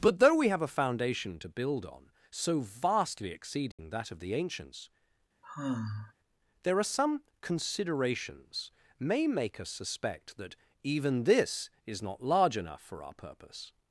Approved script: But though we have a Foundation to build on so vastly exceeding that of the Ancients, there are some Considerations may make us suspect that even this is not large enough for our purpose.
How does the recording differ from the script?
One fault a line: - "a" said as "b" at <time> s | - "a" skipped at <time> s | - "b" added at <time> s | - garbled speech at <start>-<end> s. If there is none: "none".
none